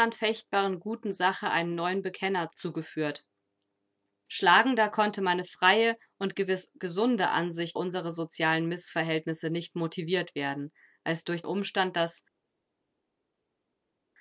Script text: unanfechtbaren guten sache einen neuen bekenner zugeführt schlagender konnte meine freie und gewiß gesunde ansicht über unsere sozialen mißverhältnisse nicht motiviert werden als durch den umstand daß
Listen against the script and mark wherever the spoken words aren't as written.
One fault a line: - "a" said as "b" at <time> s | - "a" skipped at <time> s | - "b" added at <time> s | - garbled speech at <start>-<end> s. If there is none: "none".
- "über" skipped at 7.8 s
- "den" skipped at 11.4 s